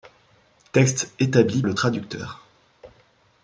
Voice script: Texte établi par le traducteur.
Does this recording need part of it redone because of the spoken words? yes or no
yes